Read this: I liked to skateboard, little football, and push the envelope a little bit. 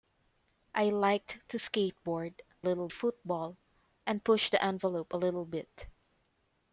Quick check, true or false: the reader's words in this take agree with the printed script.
true